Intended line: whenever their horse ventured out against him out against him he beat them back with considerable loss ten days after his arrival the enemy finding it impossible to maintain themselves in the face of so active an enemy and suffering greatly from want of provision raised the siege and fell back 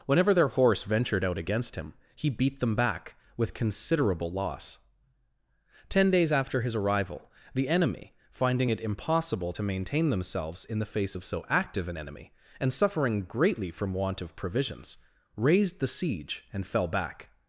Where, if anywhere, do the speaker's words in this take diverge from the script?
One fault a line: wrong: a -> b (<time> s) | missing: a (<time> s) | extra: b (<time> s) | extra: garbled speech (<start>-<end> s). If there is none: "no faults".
missing: out against him (1.9 s)
wrong: provision -> provisions (14.4 s)